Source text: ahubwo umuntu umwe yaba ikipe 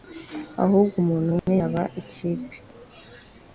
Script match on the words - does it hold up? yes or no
yes